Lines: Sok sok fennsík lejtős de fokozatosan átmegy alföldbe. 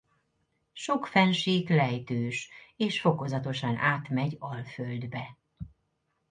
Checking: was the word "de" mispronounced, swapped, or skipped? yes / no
yes